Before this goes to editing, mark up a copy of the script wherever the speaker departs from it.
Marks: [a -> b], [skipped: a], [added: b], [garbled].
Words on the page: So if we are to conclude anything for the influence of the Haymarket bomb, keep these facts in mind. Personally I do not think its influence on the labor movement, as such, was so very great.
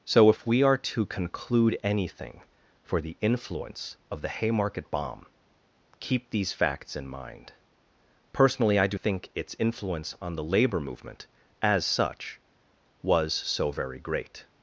So if we are to conclude anything for the influence of the Haymarket bomb, keep these facts in mind. Personally I do [skipped: not] think its influence on the labor movement, as such, was so very great.